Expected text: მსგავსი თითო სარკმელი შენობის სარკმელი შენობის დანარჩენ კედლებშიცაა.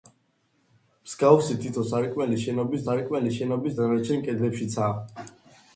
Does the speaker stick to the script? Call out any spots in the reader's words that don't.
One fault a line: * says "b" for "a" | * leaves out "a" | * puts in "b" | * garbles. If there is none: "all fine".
all fine